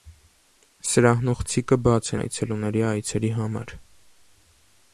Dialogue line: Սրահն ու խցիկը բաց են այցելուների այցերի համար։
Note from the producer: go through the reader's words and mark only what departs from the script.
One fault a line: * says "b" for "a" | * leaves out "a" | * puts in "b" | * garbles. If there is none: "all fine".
* leaves out "են"